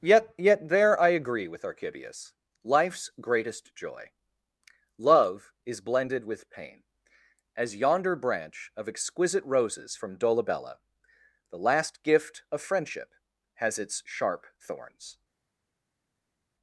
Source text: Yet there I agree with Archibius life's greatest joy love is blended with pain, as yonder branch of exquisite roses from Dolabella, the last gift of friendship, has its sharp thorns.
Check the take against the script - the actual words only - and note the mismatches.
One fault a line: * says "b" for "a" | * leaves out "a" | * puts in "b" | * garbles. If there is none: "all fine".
* puts in "yet"